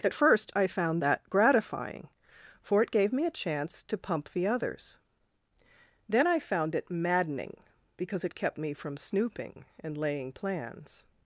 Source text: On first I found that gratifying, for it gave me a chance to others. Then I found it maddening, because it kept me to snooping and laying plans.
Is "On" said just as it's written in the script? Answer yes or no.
no